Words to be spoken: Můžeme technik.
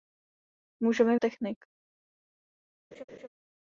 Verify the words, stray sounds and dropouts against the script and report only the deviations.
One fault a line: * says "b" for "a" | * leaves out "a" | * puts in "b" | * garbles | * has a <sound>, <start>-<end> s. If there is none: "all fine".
* has a laugh, 2.9-3.3 s